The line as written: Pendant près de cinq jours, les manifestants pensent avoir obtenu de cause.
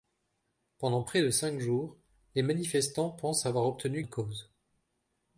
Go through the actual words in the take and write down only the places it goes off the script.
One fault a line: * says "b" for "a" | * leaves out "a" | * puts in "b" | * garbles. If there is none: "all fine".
all fine